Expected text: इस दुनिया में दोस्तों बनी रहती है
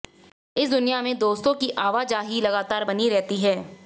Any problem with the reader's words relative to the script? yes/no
yes